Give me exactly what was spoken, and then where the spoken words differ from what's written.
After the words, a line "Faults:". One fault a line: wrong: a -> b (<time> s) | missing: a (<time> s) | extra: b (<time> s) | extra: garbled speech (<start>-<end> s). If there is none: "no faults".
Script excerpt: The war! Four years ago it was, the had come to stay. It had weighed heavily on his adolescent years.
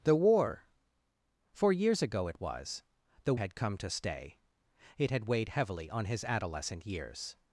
The war! Four years ago it was, the had come to stay. It had weighed heavily on his adolescent years.
Faults:
no faults